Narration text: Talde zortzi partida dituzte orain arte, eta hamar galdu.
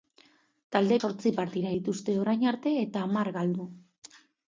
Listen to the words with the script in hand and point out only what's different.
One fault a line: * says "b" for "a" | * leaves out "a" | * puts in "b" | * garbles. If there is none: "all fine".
all fine